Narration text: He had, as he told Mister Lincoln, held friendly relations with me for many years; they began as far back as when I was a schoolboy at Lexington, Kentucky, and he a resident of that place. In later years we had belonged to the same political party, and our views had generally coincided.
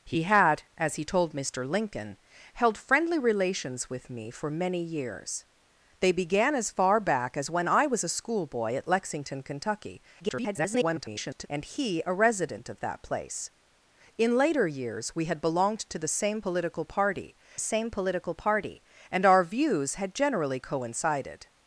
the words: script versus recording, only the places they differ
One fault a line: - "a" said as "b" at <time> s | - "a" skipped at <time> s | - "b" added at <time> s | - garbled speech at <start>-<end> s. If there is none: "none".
- garbled speech at 10.2-11.5 s
- "same political party" added at 17.6 s